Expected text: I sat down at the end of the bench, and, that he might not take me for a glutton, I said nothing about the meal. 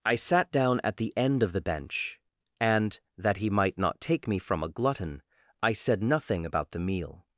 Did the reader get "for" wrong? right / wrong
wrong